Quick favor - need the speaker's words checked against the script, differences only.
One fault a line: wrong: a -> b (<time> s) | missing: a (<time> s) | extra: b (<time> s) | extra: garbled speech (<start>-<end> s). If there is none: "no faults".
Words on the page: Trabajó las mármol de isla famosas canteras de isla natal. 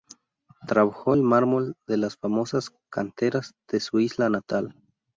wrong: las -> el (1.1 s)
wrong: isla -> las (2.0 s)
extra: su (3.8 s)